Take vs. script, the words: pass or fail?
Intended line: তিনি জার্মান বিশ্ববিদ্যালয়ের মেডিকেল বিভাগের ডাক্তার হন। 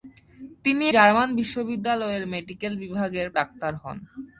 pass